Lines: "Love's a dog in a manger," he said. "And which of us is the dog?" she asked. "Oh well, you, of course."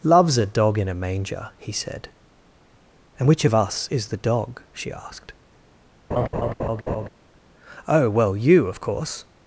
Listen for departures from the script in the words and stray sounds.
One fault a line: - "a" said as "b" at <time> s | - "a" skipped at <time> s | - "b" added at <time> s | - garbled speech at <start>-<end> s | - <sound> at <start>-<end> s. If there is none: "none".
- laugh at 6.1-7.1 s